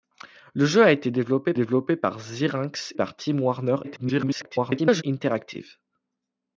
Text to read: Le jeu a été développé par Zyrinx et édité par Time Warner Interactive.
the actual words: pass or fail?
fail